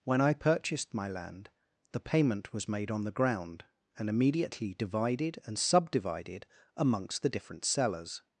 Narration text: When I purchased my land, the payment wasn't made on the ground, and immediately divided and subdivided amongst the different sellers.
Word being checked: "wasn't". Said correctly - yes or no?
no